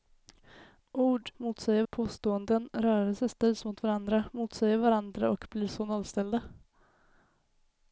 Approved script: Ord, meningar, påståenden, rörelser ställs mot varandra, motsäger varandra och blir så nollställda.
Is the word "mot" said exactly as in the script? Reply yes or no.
yes